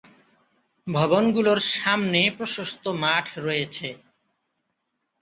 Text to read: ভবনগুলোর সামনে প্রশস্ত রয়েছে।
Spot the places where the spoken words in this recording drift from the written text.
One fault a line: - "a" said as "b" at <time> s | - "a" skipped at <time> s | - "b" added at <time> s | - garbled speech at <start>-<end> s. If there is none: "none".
- "মাঠ" added at 3.0 s